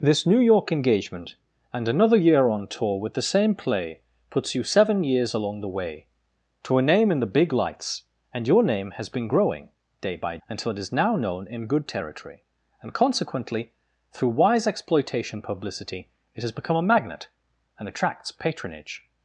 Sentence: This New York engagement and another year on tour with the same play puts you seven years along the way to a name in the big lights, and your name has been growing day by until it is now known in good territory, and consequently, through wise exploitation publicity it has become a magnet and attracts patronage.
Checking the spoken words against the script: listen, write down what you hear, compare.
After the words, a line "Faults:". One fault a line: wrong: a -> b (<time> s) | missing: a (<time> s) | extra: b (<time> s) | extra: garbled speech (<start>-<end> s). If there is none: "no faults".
This New York engagement and another year on tour with the same play puts you seven years along the way to a name in the big lights, and your name has been growing day by until it is now known in good territory, and consequently, through wise exploitation publicity it has become a magnet and attracts patronage.
Faults:
no faults